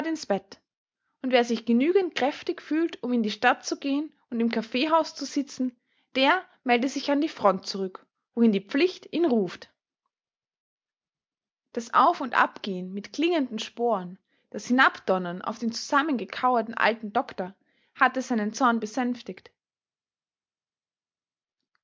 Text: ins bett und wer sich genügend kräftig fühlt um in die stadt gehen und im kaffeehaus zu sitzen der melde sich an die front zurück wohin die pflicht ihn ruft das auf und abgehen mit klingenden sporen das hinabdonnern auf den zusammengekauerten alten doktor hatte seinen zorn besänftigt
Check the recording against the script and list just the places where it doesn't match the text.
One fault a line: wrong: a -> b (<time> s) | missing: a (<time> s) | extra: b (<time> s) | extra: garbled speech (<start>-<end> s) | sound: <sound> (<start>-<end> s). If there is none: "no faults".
extra: zu (3.6 s)